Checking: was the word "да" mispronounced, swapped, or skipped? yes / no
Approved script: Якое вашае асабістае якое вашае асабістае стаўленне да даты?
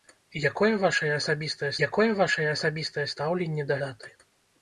no